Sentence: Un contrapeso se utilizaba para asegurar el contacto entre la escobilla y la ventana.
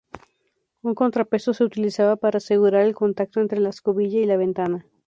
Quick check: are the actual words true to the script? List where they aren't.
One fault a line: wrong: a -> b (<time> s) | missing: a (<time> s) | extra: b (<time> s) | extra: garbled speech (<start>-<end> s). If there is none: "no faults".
no faults